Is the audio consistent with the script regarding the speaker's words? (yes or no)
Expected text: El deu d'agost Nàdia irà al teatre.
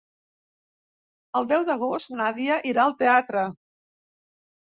yes